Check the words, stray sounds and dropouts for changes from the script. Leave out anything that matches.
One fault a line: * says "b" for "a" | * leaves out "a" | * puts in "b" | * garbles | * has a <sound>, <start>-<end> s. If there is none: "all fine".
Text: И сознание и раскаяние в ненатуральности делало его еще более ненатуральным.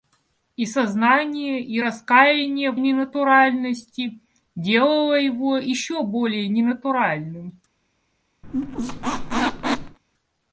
* has a squeak, 8.4-10.0 s